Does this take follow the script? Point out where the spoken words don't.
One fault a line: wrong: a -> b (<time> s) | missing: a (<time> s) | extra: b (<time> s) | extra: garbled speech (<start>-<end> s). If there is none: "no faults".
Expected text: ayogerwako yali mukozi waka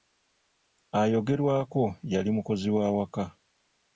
extra: wa (2.8 s)